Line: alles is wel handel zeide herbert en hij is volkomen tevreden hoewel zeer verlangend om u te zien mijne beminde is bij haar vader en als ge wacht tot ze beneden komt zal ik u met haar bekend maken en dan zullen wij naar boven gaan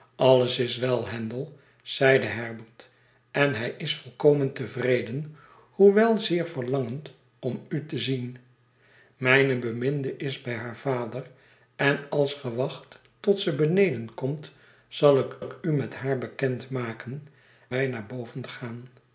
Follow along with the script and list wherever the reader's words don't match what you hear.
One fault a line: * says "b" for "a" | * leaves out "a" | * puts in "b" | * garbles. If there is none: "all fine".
* puts in "ik"
* leaves out "en dan zullen"